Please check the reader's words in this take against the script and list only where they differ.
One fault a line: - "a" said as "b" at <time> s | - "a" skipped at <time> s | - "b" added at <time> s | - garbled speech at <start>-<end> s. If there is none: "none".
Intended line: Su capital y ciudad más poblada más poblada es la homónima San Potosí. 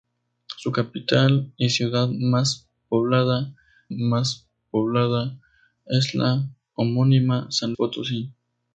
none